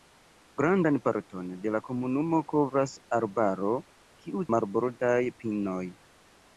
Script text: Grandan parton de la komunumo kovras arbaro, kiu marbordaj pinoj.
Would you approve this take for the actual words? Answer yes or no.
yes